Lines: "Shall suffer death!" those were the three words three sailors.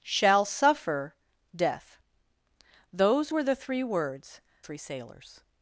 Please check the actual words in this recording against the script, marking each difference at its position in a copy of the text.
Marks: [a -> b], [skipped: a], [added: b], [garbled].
"Shall suffer death!" those were the three words three sailors.